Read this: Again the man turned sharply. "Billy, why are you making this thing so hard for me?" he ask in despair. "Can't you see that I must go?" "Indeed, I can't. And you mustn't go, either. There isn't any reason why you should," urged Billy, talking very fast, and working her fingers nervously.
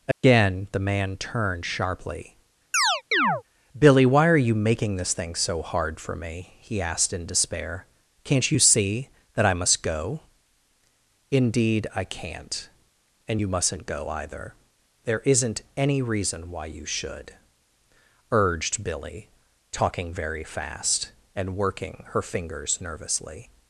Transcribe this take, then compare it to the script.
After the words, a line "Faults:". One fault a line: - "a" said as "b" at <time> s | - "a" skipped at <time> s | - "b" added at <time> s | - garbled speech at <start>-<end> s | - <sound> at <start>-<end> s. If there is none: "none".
Again the man turned sharply. "Billy, why are you making this thing so hard for me?" he asked in despair. "Can't you see that I must go?" "Indeed, I can't. And you mustn't go, either. There isn't any reason why you should," urged Billy, talking very fast, and working her fingers nervously.
Faults:
- dropout at 0.1-0.2 s
- chirp at 2.7-3.4 s
- "ask" said as "asked" at 6.8 s